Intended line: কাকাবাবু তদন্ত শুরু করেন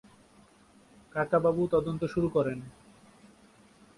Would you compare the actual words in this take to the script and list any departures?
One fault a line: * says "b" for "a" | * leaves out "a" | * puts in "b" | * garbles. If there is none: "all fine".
all fine